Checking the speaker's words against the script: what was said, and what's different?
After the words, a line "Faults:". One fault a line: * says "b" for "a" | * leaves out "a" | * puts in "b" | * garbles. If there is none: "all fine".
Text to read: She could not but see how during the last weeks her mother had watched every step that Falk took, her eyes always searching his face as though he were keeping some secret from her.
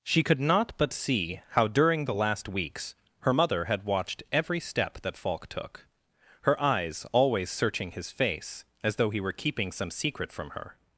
She could not but see how during the last weeks her mother had watched every step that Falk took, her eyes always searching his face as though he were keeping some secret from her.
Faults:
all fine